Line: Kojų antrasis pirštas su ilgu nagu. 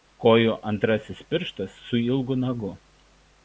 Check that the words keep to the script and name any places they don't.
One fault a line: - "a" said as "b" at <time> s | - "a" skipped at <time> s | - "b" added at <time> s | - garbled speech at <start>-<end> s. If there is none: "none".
none